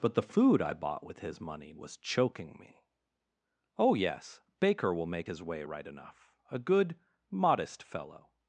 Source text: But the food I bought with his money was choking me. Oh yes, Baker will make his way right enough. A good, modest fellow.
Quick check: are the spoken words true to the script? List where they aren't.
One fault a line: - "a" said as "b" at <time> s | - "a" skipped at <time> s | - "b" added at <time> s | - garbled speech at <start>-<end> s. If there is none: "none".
none